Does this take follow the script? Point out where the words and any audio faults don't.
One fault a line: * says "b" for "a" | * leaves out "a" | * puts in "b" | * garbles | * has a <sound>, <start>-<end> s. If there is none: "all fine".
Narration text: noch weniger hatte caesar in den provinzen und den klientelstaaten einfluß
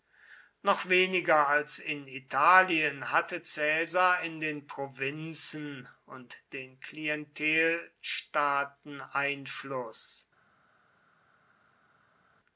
* puts in "als in italien"